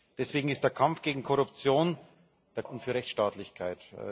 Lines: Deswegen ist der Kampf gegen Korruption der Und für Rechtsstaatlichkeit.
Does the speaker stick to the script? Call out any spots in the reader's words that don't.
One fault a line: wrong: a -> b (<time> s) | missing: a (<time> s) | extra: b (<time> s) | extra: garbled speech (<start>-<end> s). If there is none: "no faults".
no faults